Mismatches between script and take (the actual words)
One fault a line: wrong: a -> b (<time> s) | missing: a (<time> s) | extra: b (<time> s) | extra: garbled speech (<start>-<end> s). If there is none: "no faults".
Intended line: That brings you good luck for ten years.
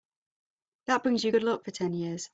no faults